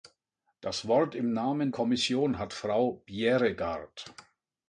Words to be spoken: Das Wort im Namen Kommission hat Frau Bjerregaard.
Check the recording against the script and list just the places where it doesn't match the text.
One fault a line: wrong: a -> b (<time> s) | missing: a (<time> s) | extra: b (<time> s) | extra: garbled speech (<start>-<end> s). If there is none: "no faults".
no faults